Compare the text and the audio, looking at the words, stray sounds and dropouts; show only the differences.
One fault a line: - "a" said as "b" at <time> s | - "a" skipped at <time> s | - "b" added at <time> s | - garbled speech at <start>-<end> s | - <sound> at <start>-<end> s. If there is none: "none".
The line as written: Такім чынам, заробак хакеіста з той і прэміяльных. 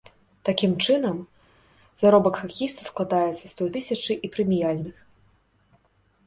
- "складаецца" added at 2.9 s
- "тысячы" added at 3.8 s